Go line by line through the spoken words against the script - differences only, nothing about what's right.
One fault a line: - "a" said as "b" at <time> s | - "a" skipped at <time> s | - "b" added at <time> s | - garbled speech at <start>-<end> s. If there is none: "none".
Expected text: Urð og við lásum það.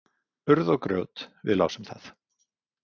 - "grjót" added at 0.9 s